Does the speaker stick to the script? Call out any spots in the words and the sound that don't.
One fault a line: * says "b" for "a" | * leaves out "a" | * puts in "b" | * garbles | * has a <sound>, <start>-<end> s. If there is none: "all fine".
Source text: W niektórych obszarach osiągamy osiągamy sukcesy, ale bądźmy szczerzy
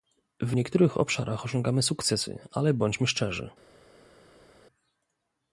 * leaves out "osiągamy"